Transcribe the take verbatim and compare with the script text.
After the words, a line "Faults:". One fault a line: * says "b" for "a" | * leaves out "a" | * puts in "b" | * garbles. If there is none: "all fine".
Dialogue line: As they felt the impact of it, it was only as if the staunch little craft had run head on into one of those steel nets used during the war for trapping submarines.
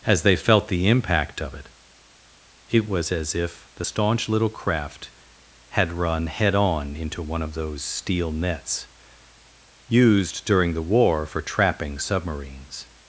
As they felt the impact of it, it was as if the staunch little craft had run head on into one of those steel nets used during the war for trapping submarines.
Faults:
* leaves out "only"